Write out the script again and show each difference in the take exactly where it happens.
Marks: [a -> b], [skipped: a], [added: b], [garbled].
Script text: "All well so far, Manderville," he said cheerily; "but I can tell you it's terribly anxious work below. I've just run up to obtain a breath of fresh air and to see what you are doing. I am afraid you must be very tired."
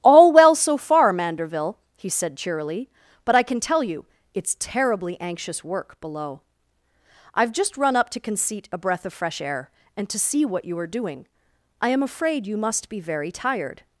"All well so far, Manderville," he said cheerily; "but I can tell you it's terribly anxious work below. I've just run up to [obtain -> conceit] a breath of fresh air and to see what you are doing. I am afraid you must be very tired."